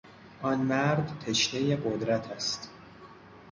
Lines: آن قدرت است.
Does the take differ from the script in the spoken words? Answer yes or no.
yes